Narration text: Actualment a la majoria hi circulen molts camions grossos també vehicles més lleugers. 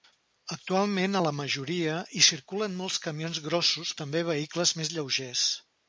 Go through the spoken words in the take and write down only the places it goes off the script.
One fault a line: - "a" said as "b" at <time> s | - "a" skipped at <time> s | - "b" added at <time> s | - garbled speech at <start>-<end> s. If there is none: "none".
none